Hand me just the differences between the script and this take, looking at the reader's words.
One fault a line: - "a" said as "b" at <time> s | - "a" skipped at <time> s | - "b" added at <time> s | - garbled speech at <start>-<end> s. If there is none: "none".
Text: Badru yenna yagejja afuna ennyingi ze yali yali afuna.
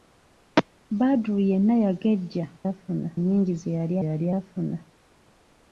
none